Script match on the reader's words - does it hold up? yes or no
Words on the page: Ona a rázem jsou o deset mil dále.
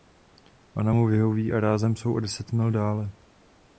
no